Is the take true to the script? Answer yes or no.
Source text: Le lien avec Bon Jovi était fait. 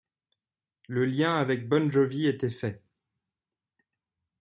yes